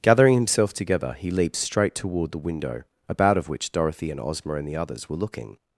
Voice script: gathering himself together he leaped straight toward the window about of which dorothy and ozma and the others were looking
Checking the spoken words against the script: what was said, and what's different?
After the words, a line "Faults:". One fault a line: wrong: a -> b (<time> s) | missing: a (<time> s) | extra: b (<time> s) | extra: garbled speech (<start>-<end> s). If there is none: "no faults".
gathering himself together he leaped straight toward the window about of which dorothy and ozma and the others were looking
Faults:
no faults